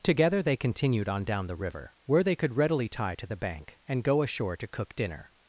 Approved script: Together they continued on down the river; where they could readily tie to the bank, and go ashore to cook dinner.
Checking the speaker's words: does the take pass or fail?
pass